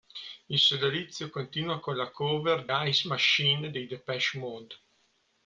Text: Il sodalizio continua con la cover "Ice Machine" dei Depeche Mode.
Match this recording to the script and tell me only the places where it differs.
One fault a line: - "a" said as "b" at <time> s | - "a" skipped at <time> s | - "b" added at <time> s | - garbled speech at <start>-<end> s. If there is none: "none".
none